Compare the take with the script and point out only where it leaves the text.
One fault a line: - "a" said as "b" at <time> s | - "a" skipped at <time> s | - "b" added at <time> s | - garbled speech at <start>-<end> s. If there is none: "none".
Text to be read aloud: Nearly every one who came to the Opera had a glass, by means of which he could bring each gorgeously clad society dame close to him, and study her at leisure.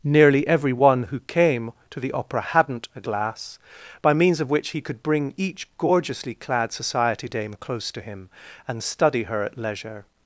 - "had" said as "hadn't" at 2.4 s